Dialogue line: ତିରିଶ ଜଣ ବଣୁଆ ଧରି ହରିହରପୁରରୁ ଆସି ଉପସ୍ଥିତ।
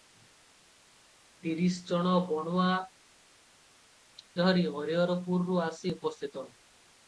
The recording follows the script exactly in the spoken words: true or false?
true